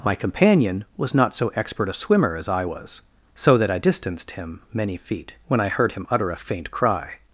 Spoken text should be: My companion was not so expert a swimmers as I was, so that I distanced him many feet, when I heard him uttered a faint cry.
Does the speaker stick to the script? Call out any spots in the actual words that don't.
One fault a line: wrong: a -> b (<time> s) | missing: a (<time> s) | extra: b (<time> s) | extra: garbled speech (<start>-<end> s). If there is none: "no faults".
wrong: swimmers -> swimmer (1.9 s)
wrong: uttered -> utter (6.1 s)